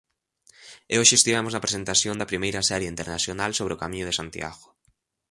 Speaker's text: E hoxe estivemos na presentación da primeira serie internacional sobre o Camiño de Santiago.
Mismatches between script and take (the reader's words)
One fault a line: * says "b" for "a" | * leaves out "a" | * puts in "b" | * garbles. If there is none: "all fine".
all fine